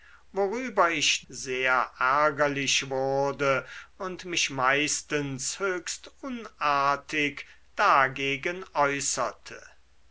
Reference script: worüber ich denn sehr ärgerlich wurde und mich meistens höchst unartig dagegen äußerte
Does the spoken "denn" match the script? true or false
false